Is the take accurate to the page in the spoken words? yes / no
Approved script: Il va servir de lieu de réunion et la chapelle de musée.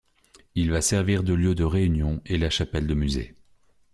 yes